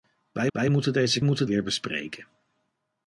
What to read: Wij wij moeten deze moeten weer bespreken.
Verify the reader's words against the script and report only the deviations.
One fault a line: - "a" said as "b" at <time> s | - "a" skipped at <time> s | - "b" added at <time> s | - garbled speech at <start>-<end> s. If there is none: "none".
none